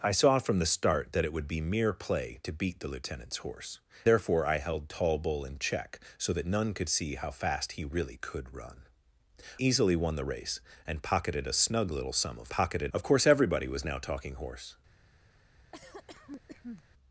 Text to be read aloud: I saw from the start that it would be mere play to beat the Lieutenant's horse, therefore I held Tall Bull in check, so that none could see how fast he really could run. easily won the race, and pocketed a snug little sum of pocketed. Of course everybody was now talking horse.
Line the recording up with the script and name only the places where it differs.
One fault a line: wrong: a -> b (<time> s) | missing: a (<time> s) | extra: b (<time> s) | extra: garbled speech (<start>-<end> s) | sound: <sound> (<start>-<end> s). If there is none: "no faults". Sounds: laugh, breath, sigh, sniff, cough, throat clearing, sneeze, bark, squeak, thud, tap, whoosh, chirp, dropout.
sound: cough (15.7-16.9 s)